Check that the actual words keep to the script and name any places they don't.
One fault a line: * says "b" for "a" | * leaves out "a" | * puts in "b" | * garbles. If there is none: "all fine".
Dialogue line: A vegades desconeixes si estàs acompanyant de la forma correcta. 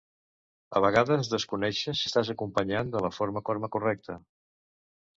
* leaves out "si"
* puts in "forma"